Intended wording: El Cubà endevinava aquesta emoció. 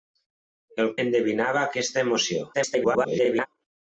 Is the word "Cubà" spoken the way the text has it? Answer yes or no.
no